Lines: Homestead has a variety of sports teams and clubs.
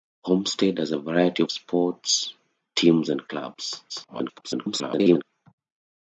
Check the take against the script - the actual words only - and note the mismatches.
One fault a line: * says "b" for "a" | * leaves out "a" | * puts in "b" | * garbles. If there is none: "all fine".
* garbles